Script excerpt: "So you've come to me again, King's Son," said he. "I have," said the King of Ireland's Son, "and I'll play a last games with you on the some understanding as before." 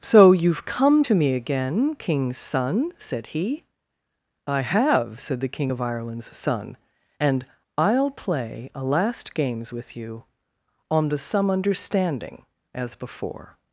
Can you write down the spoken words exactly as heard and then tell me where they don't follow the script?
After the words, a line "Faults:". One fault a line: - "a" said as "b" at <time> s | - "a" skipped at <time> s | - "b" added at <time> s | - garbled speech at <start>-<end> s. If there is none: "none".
"So you've come to me again, King's Son," said he. "I have," said the King of Ireland's Son, "and I'll play a last games with you on the some understanding as before."
Faults:
none